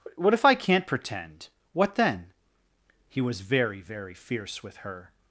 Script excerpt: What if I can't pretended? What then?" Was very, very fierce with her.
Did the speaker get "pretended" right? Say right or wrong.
wrong